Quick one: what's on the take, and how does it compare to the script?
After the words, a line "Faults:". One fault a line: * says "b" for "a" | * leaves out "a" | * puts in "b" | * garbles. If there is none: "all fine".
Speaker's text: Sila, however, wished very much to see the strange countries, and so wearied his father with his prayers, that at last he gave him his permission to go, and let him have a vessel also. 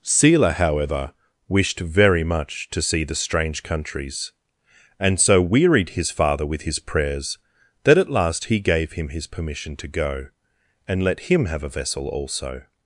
Sila, however, wished very much to see the strange countries, and so wearied his father with his prayers, that at last he gave him his permission to go, and let him have a vessel also.
Faults:
all fine